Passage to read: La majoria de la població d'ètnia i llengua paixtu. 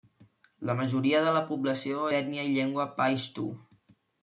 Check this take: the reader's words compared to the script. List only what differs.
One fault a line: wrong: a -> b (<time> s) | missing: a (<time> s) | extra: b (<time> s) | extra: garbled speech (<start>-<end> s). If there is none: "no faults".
no faults